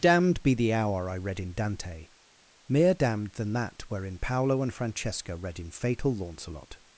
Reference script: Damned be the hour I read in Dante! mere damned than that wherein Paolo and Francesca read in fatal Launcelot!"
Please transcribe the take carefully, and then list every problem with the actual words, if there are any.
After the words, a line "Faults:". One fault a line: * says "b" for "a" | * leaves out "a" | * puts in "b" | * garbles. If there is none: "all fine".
Damned be the hour I read in Dante! mere damned than that wherein Paolo and Francesca read in fatal Launcelot!"
Faults:
all fine